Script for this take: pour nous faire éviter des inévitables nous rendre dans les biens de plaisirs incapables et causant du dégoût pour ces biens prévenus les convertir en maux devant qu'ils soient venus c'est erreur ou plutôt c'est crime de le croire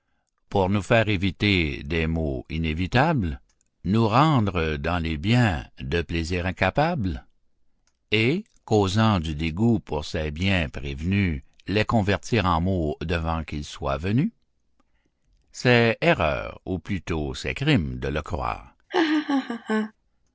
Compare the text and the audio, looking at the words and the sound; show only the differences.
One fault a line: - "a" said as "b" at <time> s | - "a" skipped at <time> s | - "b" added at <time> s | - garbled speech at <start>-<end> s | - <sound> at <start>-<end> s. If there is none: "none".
- "maux" added at 2.1 s
- laugh at 18.9-19.9 s